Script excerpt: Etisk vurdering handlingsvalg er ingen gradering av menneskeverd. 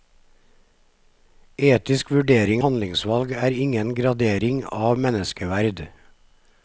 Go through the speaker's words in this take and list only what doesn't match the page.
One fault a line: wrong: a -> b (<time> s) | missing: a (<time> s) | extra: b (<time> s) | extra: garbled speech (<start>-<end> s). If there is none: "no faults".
no faults